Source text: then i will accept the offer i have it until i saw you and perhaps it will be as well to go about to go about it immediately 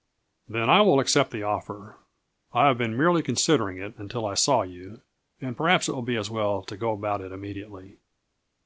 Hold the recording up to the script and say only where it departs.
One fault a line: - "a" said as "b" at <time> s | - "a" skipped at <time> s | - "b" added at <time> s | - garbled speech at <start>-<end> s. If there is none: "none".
- "been merely considering" added at 2.8 s
- "to go about" skipped at 7.2 s